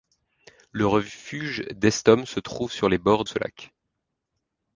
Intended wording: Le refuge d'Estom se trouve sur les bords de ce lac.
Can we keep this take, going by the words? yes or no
no